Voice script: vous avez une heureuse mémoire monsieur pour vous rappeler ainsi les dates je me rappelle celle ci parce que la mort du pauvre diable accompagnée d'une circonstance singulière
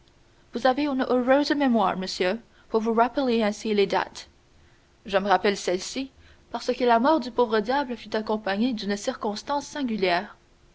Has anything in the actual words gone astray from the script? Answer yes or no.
yes